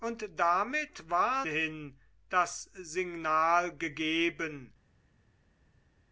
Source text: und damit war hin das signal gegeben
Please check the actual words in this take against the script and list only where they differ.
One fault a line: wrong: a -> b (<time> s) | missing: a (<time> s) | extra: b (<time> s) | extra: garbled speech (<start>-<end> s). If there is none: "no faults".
no faults